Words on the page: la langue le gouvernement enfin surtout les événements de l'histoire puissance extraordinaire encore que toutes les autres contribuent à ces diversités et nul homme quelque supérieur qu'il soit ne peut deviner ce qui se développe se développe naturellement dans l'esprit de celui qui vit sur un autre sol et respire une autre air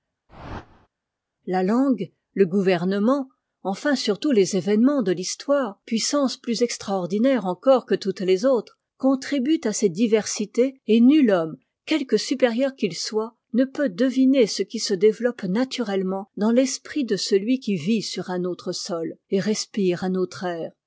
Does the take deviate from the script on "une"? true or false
true